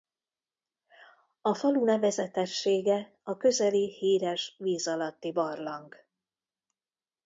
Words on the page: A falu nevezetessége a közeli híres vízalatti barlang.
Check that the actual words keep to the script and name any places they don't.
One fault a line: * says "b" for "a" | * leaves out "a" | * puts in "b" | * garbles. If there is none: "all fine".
all fine